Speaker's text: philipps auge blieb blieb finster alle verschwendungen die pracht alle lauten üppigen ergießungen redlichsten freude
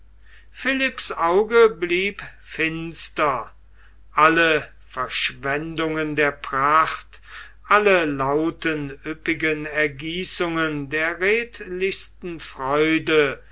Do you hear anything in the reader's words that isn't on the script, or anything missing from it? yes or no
yes